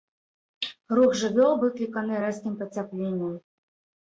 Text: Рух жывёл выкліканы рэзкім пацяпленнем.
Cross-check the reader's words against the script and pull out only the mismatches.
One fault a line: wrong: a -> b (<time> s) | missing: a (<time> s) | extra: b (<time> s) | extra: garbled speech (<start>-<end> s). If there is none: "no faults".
no faults